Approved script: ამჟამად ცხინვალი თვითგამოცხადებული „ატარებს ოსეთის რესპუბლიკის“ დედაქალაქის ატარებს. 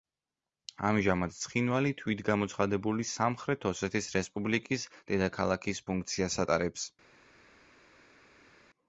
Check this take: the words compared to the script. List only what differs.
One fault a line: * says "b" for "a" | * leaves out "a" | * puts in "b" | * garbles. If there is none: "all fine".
* says "სამხრეთ" for "ატარებს"
* puts in "ფუნქციას"